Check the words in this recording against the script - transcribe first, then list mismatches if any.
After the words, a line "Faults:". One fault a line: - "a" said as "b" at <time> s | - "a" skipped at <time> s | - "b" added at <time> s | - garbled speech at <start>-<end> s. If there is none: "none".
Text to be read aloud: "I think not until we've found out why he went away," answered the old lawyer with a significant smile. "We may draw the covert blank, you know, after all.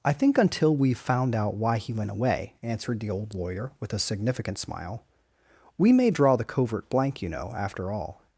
"I think until we've found out why he went away," answered the old lawyer with a significant smile. "We may draw the covert blank, you know, after all.
Faults:
- "not" skipped at 0.4 s